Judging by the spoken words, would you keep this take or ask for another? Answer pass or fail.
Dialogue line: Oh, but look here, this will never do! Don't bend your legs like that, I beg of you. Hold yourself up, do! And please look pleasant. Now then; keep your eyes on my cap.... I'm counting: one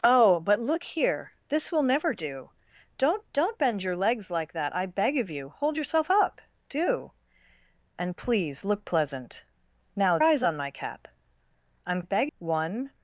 fail